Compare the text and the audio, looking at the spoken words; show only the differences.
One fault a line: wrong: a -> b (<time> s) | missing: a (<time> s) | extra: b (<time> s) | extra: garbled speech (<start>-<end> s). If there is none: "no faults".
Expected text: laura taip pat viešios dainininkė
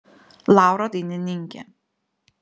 missing: taip pat viešios (0.9 s)